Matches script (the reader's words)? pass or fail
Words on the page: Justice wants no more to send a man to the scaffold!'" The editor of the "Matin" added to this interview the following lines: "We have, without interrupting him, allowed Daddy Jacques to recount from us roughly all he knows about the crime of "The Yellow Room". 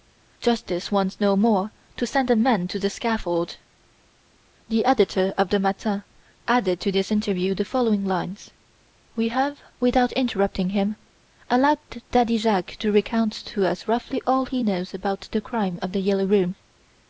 fail